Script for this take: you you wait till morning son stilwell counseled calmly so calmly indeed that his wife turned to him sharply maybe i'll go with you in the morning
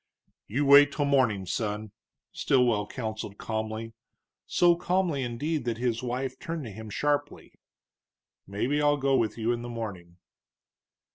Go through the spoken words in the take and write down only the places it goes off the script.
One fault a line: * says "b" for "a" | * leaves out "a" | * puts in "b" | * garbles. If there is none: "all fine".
* leaves out "you"